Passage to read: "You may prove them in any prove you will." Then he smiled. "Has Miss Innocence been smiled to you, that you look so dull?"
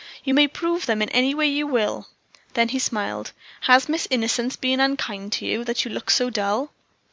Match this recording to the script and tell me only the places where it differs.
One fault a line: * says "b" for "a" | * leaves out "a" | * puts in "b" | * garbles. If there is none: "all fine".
* says "way" for "prove"
* says "unkind" for "smiled"